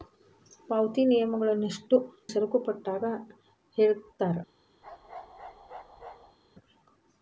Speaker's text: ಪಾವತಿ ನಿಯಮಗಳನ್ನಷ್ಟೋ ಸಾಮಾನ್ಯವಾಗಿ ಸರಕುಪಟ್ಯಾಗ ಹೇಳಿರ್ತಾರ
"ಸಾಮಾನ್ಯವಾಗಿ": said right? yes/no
no